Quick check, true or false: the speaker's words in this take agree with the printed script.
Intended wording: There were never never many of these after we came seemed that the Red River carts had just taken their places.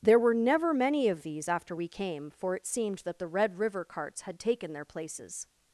false